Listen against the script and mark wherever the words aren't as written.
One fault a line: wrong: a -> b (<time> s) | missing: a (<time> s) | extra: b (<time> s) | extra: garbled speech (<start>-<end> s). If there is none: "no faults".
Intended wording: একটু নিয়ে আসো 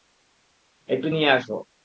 no faults